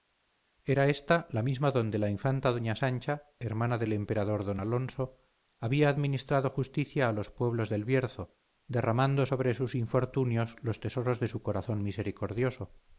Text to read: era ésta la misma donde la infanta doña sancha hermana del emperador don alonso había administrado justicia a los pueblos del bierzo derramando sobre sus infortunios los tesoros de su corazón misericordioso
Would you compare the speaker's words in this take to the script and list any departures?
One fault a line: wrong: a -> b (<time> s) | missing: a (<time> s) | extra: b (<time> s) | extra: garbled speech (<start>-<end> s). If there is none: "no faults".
no faults